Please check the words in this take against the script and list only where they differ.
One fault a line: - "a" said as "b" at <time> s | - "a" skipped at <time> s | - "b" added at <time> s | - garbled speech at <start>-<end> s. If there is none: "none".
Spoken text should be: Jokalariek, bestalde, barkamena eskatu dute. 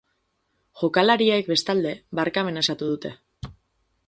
none